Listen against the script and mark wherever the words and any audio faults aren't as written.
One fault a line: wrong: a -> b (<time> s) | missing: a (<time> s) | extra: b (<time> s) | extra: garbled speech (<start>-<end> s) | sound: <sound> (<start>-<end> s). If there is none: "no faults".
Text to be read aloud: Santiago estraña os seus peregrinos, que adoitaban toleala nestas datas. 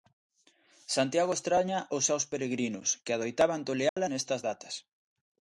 sound: dropout (3.9-4.0 s)